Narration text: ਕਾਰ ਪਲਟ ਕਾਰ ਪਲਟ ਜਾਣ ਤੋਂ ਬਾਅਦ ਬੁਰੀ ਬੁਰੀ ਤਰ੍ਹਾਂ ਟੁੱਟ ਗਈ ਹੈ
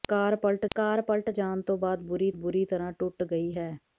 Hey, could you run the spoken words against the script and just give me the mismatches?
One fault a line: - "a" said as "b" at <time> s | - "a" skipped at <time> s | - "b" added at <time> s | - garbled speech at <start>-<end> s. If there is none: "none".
none